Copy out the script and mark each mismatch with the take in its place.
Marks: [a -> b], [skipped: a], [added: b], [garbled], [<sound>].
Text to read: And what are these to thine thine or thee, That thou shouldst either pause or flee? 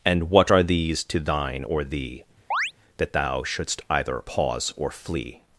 And what are these to thine [skipped: thine] or thee, [chirp] That thou shouldst either pause or flee?